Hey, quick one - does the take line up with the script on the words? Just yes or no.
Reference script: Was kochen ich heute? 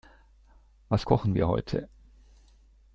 no